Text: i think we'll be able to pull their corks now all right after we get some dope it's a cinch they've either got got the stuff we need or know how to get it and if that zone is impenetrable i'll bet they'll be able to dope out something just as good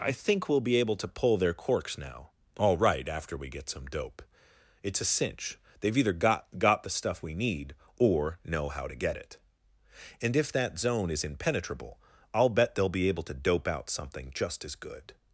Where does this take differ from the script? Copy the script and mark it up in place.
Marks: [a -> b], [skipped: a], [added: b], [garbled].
i think we'll be able to pull their corks now all right after we get some dope it's a cinch they've either got got the stuff we need or know how to get it and if that zone is impenetrable i'll bet they'll be able to dope out something just as good